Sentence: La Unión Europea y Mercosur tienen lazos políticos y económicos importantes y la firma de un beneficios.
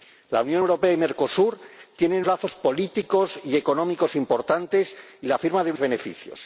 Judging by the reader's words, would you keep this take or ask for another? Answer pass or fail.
pass